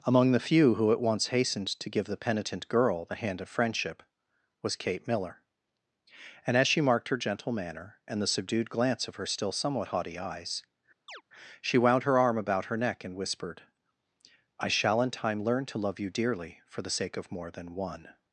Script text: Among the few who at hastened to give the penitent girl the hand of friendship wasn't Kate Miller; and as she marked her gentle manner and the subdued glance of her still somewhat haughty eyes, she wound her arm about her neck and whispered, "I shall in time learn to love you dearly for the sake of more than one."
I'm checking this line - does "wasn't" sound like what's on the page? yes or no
no